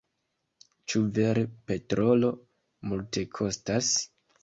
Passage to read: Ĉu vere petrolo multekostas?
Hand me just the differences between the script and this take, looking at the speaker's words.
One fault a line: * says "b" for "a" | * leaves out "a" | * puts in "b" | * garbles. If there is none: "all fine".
all fine